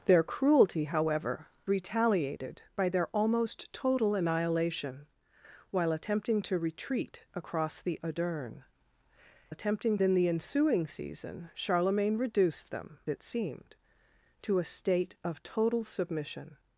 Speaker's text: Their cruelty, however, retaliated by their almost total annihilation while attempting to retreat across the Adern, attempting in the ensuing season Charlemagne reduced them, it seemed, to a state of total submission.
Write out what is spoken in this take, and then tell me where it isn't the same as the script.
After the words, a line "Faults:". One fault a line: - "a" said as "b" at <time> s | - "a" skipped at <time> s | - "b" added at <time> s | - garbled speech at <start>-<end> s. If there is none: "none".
Their cruelty, however, retaliated by their almost total annihilation while attempting to retreat across the Adern, attempting in the ensuing season Charlemagne reduced them, it seemed, to a state of total submission.
Faults:
none